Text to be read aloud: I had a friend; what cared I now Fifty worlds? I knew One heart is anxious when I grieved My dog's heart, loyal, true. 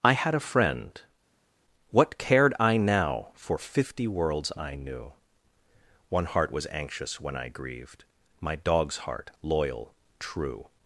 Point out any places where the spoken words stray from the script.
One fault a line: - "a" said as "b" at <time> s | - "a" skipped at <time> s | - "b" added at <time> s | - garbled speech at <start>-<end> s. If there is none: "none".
- "For" added at 3.3 s
- "is" said as "was" at 6.5 s